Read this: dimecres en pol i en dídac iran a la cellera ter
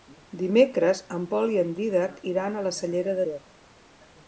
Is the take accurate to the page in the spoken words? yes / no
yes